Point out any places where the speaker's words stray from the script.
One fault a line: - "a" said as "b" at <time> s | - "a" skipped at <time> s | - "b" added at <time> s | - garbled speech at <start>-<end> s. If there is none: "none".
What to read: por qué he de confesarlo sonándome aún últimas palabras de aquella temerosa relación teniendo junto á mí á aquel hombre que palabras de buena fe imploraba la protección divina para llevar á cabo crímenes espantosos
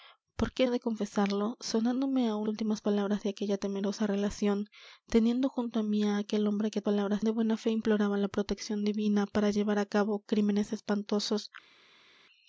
none